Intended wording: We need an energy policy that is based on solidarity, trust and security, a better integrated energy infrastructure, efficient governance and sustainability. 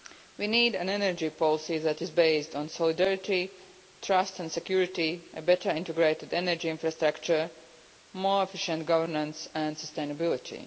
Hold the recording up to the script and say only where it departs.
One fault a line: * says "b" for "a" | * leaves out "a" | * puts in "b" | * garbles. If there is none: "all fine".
* puts in "more"